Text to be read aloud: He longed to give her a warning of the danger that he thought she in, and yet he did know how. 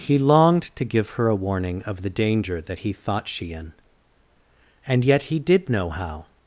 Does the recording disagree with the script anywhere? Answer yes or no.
no